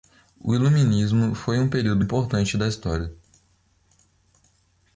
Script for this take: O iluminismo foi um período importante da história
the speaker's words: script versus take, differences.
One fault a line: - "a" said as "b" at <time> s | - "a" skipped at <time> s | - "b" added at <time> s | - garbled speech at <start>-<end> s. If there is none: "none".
none